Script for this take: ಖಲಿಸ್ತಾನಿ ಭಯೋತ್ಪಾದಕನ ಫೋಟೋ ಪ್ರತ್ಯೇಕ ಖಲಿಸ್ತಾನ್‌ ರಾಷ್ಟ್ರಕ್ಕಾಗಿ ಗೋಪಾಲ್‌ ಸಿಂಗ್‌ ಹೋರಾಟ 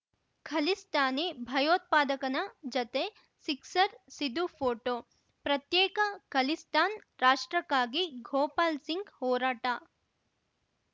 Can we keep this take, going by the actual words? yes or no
no